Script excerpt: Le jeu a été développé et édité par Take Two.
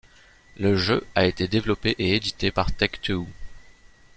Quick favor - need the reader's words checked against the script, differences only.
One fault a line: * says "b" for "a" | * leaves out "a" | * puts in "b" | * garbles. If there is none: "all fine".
all fine